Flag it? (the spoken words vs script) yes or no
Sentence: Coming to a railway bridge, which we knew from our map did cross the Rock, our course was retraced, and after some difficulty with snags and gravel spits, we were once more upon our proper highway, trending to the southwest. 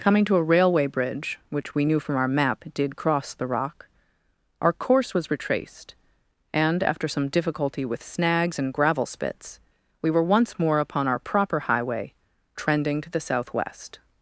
no